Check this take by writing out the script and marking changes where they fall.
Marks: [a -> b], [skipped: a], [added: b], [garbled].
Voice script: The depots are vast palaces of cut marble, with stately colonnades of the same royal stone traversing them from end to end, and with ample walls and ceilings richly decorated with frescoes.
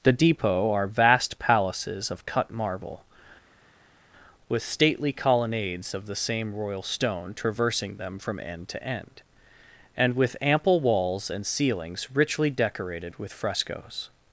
The [depots -> depot] are vast palaces of cut marble, with stately colonnades of the same royal stone traversing them from end to end, and with ample walls and ceilings richly decorated with frescoes.